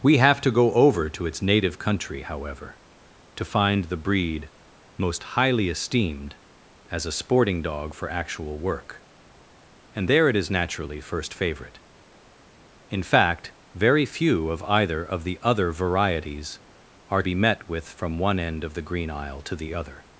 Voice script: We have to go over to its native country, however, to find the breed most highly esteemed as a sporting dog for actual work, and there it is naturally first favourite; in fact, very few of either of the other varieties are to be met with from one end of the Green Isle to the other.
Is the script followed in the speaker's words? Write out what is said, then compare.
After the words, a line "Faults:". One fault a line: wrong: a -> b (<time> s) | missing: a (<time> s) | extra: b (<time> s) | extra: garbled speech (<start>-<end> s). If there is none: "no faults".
We have to go over to its native country, however, to find the breed most highly esteemed as a sporting dog for actual work, and there it is naturally first favourite; in fact, very few of either of the other varieties are be met with from one end of the Green Isle to the other.
Faults:
missing: to (17.2 s)